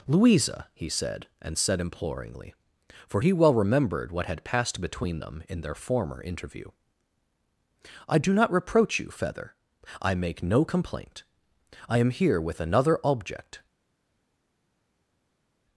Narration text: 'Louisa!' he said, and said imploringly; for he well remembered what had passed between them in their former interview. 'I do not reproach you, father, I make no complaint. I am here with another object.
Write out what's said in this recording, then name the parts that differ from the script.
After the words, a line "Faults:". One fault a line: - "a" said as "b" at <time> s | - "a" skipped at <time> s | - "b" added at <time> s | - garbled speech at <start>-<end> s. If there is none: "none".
'Louisa!' he said, and said imploringly; for he well remembered what had passed between them in their former interview. 'I do not reproach you, feather, I make no complaint. I am here with another object.
Faults:
- "father" said as "feather" at 9.1 s